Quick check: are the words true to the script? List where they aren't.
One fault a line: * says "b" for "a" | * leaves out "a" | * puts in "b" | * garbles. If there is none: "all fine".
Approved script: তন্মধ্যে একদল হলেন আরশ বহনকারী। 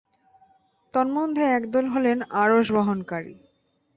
all fine